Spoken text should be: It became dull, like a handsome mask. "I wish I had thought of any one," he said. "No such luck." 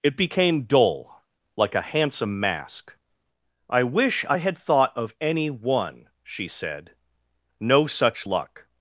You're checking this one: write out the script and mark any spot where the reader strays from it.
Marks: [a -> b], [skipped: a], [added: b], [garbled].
It became dull, like a handsome mask. "I wish I had thought of any one," [he -> she] said. "No such luck."